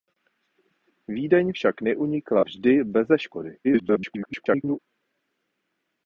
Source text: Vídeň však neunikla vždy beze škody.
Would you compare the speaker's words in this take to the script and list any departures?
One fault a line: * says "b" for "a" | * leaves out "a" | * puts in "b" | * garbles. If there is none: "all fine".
* garbles